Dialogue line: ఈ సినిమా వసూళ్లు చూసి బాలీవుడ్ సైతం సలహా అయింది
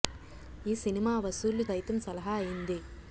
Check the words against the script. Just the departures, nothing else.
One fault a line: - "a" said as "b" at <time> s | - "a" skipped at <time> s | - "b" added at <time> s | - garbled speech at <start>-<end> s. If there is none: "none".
- "చూసి బాలీవుడ్" skipped at 1.6 s